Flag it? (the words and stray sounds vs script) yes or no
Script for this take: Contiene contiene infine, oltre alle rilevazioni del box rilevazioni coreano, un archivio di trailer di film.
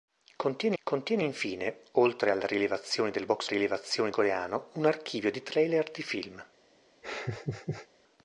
yes